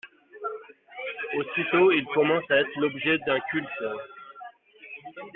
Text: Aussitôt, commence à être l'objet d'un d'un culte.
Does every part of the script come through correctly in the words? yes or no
no